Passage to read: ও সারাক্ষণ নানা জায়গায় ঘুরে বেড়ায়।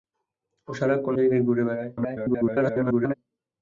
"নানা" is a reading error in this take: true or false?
true